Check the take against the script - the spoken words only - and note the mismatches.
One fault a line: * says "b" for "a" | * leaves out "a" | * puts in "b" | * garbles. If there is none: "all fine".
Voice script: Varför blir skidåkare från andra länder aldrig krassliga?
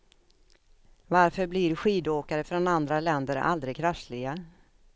all fine